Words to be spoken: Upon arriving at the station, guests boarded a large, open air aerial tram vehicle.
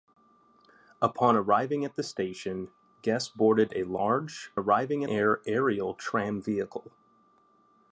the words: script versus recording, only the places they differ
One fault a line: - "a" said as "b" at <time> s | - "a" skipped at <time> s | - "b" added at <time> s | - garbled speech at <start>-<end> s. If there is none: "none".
- "open" said as "arriving" at 4.5 s